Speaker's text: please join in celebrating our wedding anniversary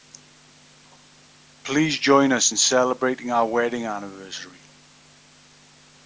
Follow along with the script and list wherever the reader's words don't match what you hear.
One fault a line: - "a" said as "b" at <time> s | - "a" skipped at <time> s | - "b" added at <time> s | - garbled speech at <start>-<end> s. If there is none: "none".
- "us" added at 2.3 s